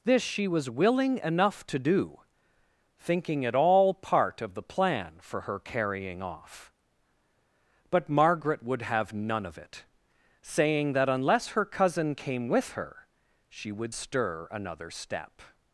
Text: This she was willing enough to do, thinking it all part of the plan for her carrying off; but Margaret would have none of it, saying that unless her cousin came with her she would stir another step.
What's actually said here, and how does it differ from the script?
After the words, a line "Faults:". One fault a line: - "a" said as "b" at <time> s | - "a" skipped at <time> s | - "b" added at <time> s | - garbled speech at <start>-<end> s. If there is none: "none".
This she was willing enough to do, thinking it all part of the plan for her carrying off; but Margaret would have none of it, saying that unless her cousin came with her she would stir another step.
Faults:
none